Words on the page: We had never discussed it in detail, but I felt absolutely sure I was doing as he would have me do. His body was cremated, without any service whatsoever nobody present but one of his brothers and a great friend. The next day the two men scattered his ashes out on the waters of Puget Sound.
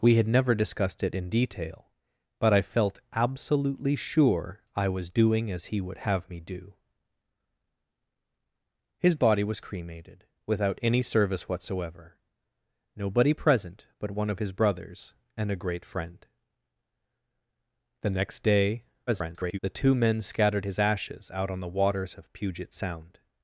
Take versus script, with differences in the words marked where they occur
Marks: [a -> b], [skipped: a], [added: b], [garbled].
We had never discussed it in detail, but I felt absolutely sure I was doing as he would have me do. His body was cremated, without any service whatsoever nobody present but one of his brothers and a great friend. The next day [garbled] the two men scattered his ashes out on the waters of Puget Sound.